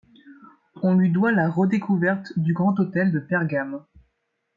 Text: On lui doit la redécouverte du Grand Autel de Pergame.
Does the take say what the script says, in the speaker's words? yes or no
yes